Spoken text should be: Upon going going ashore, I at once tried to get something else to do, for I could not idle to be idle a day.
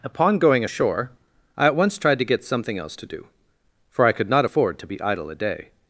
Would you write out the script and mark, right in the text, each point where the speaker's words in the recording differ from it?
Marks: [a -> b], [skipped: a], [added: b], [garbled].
Upon going [skipped: going] ashore, I at once tried to get something else to do, for I could not [idle -> afford] to be idle a day.